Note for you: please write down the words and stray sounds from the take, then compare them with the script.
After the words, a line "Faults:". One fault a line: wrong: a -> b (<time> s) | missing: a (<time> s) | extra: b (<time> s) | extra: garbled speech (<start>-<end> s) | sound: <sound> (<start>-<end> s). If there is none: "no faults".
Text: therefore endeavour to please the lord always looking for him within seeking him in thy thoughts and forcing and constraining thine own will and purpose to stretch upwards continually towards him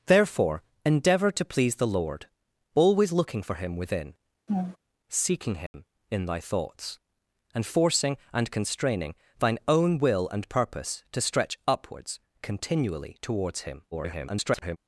therefore endeavour to please the lord always looking for him within seeking him in thy thoughts and forcing and constraining thine own will and purpose to stretch upwards continually towards him [garbled]
Faults:
sound: laugh (4.5-4.8 s)
sound: dropout (5.7-5.7 s)
extra: garbled speech (13.9-14.8 s)